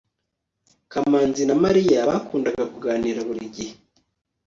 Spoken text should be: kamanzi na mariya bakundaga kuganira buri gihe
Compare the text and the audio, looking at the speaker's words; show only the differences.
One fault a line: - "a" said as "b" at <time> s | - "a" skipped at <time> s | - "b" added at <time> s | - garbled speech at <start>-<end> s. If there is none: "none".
none